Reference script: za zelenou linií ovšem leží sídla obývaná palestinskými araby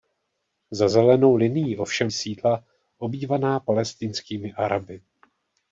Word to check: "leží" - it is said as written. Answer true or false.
false